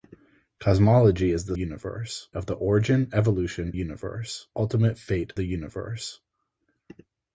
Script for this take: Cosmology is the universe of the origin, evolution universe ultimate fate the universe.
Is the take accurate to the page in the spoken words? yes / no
yes